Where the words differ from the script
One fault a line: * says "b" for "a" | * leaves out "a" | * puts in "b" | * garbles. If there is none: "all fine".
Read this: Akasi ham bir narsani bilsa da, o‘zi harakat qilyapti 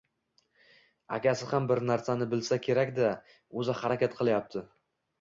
* puts in "kerak"